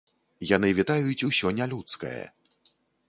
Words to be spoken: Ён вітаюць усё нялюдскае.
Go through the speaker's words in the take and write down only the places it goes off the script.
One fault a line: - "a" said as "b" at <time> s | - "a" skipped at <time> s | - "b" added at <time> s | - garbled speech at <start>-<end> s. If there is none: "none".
- "Ён" said as "Яны" at 0.5 s